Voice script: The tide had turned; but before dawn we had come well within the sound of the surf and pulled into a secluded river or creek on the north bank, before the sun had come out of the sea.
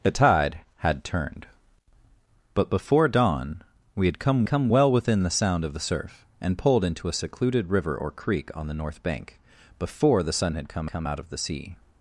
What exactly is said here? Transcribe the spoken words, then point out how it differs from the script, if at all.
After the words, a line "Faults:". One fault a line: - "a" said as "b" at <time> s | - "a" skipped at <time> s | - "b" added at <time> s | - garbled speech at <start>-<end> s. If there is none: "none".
The tide had turned; but before dawn we had come come well within the sound of the surf and pulled into a secluded river or creek on the north bank, before the sun had come come out of the sea.
Faults:
- "come" added at 4.4 s
- "come" added at 10.9 s